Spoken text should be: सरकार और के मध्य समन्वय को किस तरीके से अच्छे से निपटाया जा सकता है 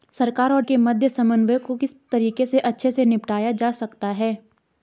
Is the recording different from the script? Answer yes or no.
no